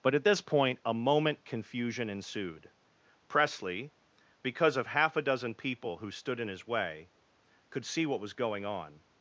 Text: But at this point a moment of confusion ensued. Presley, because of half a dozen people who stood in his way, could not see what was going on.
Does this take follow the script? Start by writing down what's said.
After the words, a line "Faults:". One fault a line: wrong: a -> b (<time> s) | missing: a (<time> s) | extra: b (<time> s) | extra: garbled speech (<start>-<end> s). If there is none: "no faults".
But at this point a moment confusion ensued. Presley, because of half a dozen people who stood in his way, could see what was going on.
Faults:
missing: of (1.4 s)
missing: not (7.8 s)